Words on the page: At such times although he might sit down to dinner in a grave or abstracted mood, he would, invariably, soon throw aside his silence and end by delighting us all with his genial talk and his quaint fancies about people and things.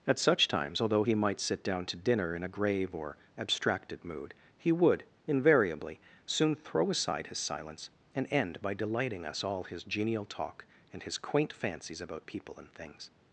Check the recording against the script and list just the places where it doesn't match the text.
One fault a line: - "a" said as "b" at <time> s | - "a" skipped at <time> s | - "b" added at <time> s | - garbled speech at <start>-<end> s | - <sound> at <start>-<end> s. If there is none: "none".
- "with" skipped at 9.6 s